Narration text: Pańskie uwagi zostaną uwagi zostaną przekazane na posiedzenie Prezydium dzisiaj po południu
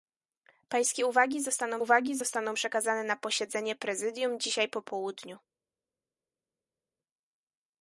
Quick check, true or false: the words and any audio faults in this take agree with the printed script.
true